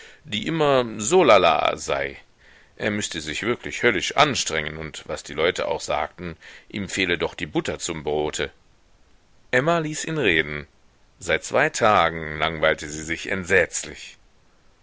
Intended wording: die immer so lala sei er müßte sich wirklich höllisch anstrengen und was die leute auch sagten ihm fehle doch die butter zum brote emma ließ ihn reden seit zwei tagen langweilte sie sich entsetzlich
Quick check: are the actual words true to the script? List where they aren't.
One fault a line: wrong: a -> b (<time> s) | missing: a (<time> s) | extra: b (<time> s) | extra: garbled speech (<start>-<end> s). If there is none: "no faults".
no faults